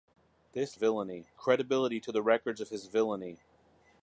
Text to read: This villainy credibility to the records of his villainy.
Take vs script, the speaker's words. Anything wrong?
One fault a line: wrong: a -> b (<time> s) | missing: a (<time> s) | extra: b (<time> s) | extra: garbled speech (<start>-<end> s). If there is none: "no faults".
no faults